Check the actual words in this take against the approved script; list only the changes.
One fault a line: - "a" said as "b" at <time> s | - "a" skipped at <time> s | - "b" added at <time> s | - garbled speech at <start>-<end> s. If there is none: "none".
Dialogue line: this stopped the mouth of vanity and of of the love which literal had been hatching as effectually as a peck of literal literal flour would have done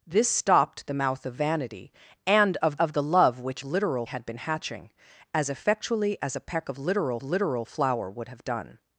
none